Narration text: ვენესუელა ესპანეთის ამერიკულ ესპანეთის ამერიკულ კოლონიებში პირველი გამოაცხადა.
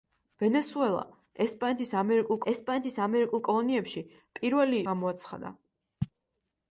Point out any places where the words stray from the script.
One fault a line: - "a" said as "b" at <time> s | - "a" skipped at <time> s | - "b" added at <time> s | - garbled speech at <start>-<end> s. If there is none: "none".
none